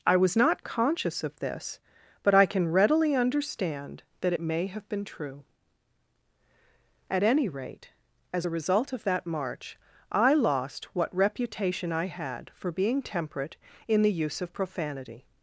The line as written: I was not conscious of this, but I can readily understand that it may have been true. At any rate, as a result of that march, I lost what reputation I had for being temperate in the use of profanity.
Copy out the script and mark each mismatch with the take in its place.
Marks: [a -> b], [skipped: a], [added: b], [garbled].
I was not conscious of this, but I can readily understand that it may have been true. At any rate, as a result of that march, I lost what reputation I had for being temperate in the use of profanity.